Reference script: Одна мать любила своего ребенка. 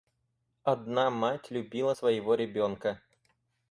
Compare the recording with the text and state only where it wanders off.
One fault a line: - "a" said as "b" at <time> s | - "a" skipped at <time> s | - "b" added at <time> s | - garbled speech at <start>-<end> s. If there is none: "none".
none